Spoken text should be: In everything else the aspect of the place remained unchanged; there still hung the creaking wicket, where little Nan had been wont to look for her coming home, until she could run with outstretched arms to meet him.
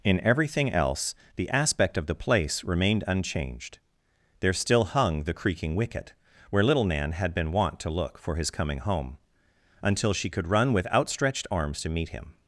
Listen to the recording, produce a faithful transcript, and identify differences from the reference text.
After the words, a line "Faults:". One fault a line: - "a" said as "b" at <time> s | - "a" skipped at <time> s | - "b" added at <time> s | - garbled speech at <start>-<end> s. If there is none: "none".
In everything else the aspect of the place remained unchanged; there still hung the creaking wicket, where little Nan had been wont to look for his coming home, until she could run with outstretched arms to meet him.
Faults:
- "her" said as "his" at 8.3 s